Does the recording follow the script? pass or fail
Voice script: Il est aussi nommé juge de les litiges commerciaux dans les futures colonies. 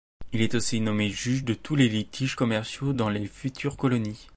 fail